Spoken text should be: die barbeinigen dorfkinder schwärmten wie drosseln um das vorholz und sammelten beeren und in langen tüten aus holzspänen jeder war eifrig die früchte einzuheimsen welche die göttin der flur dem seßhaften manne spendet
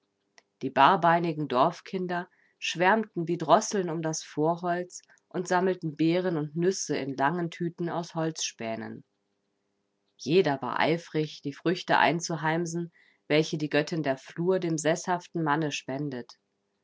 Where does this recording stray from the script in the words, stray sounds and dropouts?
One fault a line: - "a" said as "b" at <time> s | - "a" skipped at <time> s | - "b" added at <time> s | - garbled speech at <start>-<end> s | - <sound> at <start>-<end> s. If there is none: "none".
- "nüsse" added at 6.5 s